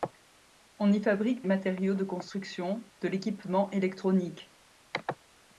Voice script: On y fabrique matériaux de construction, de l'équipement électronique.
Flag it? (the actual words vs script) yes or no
no